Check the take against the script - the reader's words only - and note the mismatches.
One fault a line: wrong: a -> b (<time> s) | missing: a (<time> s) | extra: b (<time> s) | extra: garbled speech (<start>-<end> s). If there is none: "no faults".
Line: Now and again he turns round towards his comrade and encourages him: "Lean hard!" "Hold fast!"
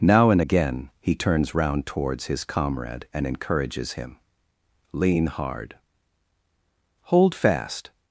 no faults